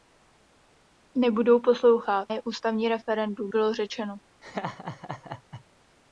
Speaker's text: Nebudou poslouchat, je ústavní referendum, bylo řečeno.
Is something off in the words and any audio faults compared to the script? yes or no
yes